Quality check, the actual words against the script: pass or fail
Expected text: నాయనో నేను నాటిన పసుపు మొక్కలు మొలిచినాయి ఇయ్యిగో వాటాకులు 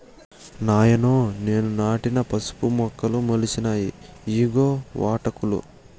pass